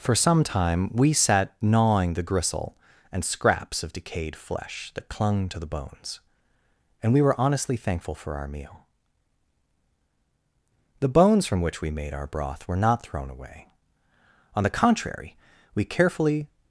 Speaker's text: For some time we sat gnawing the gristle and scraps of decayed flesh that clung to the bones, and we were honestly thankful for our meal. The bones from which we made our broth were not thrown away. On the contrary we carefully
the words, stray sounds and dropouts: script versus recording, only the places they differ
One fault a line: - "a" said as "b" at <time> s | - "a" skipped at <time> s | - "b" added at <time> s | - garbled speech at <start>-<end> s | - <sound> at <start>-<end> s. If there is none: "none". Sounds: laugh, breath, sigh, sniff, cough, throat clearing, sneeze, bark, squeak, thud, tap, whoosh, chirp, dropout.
none